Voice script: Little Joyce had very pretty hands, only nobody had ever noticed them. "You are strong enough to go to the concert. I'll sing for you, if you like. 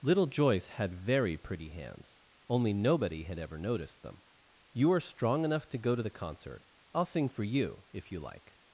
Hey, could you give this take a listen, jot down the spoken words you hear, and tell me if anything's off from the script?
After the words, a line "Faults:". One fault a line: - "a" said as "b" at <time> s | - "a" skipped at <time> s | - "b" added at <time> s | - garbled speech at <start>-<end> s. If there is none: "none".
Little Joyce had very pretty hands, only nobody had ever noticed them. "You are strong enough to go to the concert. I'll sing for you, if you like.
Faults:
none